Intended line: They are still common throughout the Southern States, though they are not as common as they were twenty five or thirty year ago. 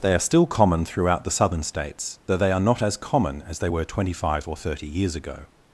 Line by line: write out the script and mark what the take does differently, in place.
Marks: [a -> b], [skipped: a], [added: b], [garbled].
They are still common throughout the Southern States, though they are not as common as they were twenty five or thirty [year -> years] ago.